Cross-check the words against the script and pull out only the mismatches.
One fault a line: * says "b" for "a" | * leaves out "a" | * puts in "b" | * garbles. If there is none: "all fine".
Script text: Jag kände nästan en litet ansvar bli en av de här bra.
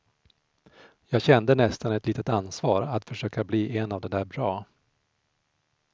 * says "ett" for "en"
* puts in "att försöka"
* says "där" for "här"